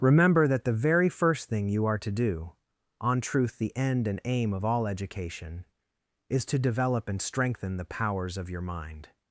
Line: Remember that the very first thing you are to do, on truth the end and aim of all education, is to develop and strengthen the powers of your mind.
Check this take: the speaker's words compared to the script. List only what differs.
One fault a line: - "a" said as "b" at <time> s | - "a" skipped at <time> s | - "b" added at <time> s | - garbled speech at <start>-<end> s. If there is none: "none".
none